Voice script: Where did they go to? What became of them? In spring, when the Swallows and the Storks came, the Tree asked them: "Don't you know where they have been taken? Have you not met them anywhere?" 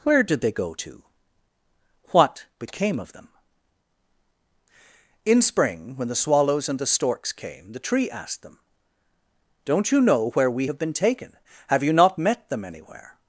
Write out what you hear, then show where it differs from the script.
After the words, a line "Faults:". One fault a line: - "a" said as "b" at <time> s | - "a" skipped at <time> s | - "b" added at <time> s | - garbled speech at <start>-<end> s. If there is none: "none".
Where did they go to? What became of them? In spring, when the Swallows and the Storks came, the Tree asked them: "Don't you know where we have been taken? Have you not met them anywhere?"
Faults:
- "they" said as "we" at 10.5 s